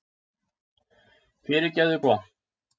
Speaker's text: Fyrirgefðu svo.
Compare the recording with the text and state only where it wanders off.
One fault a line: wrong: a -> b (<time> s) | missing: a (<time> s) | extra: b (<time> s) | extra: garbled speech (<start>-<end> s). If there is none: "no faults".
no faults